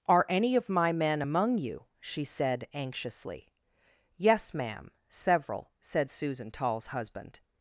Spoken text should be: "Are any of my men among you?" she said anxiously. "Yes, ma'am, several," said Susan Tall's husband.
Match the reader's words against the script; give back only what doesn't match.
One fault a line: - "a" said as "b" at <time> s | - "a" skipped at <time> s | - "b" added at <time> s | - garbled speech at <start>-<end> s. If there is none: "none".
none